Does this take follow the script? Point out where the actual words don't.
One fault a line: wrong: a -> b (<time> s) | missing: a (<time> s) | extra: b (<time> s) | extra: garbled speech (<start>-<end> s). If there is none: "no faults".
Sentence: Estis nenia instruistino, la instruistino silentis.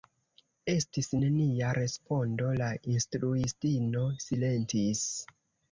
wrong: instruistino -> respondo (1.8 s)